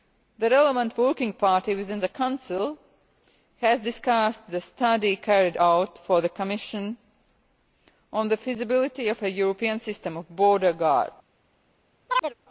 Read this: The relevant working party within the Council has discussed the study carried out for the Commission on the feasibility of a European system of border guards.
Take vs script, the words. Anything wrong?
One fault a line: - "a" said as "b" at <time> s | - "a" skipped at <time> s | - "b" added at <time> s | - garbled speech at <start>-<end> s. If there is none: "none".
none